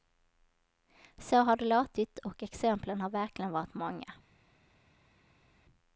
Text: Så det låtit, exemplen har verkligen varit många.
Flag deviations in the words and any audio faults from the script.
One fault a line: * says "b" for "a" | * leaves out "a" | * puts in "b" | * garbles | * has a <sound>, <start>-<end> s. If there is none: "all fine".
* puts in "har"
* puts in "och"